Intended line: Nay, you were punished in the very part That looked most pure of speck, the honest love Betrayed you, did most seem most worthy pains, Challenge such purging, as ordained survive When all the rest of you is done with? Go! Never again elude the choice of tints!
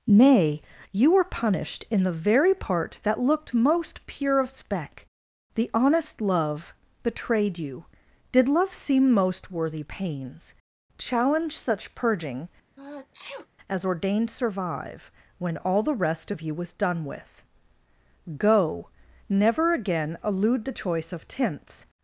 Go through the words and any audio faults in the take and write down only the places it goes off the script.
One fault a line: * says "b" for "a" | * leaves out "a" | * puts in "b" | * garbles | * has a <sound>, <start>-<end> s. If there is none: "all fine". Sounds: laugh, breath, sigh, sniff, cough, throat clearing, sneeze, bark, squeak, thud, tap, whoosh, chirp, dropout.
* says "love" for "most"
* has a sneeze, 12.8-13.5 s
* says "was" for "is"